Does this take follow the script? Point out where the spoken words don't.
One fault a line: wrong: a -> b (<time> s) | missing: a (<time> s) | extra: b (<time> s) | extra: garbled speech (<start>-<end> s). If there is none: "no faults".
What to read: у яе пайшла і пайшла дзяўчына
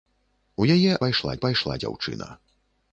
no faults